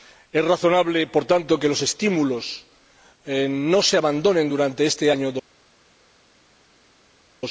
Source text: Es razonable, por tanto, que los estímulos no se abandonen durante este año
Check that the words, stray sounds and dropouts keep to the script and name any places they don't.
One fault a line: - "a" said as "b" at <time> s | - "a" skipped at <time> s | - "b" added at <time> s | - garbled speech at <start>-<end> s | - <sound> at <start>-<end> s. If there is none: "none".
none